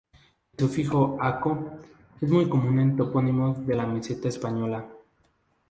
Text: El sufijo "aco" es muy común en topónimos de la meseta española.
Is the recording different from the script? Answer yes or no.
no